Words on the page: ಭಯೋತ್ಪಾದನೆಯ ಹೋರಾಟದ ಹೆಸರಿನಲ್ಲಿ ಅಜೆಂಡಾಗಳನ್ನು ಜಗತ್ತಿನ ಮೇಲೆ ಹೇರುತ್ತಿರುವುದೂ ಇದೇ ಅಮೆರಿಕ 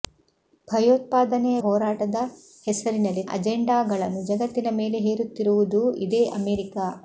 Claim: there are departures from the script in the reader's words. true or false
false